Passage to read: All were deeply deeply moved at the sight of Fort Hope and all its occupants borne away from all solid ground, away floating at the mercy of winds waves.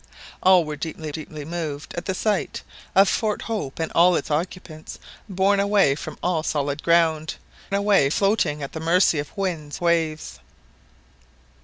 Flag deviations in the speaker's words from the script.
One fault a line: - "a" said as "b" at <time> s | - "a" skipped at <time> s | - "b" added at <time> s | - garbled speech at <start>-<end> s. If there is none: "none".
none